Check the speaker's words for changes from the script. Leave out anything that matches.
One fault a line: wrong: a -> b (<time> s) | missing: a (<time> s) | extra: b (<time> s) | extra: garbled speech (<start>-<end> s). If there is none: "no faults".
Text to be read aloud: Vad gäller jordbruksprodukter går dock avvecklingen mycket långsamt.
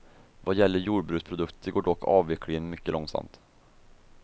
no faults